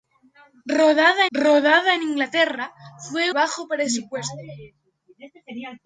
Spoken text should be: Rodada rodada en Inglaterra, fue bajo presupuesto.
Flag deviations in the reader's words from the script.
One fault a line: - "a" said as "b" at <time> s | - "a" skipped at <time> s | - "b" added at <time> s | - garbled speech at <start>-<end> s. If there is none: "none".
none